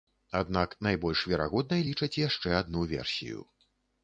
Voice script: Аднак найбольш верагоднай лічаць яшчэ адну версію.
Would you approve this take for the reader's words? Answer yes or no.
yes